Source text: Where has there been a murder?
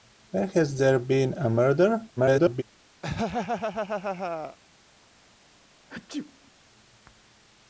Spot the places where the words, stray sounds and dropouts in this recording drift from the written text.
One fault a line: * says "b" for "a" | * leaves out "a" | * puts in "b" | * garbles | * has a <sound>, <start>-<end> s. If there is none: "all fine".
* garbles
* has a laugh, 3.0-4.6 s
* has a sneeze, 5.9-6.5 s